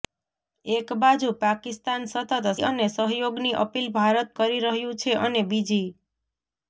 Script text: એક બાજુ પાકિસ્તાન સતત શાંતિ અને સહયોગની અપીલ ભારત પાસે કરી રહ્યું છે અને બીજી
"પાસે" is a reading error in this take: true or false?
true